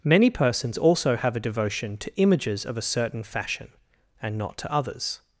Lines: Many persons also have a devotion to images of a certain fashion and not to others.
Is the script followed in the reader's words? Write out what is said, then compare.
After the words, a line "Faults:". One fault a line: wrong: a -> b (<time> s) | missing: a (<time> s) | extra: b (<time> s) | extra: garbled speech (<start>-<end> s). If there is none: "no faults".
Many persons also have a devotion to images of a certain fashion and not to others.
Faults:
no faults